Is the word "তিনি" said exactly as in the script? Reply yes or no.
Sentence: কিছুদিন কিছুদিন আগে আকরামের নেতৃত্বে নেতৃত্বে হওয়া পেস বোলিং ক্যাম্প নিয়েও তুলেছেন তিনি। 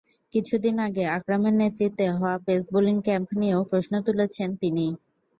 yes